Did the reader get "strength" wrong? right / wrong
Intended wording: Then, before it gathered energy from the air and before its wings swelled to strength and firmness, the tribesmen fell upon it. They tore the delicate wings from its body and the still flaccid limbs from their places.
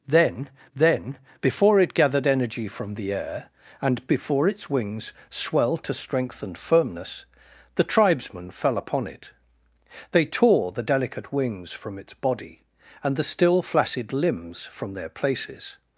right